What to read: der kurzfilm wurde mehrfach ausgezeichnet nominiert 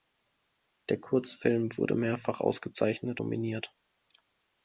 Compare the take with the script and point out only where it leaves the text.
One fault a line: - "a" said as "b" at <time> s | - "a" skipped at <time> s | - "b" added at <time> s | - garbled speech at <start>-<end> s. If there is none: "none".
none